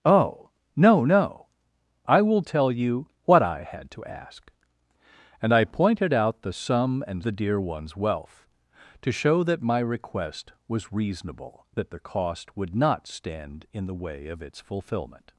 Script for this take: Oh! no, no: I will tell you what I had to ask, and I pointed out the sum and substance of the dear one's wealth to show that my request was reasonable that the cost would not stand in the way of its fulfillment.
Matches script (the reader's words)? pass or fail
fail